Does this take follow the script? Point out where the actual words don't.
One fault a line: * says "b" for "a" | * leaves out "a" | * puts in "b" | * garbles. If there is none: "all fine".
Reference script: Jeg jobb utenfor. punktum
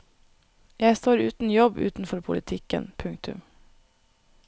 * puts in "står uten"
* puts in "politikken"